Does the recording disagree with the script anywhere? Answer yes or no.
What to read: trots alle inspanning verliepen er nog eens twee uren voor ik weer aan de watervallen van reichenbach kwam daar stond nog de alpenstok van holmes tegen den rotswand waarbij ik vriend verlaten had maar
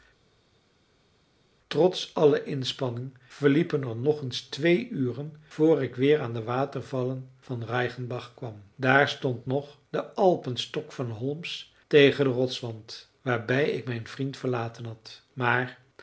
yes